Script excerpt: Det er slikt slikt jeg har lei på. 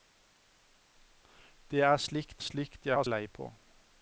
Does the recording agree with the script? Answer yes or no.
yes